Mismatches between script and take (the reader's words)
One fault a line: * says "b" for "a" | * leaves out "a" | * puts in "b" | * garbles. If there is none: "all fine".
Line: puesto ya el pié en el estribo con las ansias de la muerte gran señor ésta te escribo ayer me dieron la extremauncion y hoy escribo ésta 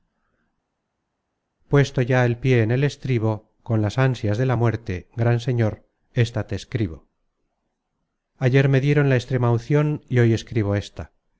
all fine